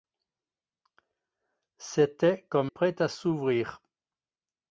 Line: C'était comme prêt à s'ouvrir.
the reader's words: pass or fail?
pass